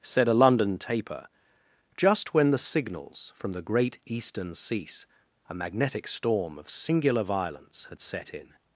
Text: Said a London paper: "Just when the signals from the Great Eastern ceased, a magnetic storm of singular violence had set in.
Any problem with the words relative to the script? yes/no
yes